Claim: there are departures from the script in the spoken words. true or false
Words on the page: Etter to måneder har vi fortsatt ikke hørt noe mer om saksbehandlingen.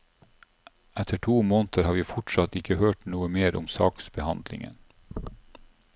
false